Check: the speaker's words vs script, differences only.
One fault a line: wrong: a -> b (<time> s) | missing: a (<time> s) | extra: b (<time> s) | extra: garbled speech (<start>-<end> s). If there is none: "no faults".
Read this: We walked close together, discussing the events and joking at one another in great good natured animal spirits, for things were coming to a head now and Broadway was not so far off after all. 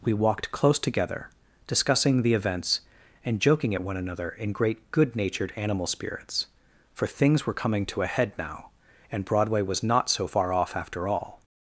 no faults